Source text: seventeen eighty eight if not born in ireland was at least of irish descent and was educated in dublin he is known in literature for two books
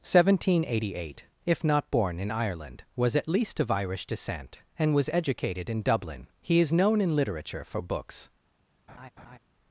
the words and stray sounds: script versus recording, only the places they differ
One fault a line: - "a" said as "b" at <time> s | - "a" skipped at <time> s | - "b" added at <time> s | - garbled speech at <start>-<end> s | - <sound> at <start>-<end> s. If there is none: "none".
- "two" skipped at 7.8 s
- laugh at 8.9-9.4 s